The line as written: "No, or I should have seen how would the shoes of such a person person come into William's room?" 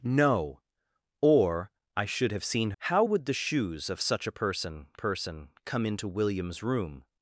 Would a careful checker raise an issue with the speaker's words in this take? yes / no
no